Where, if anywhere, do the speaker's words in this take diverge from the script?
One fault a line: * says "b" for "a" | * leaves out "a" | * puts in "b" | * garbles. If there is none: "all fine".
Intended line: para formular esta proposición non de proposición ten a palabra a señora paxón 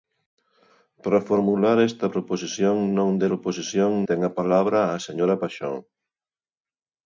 all fine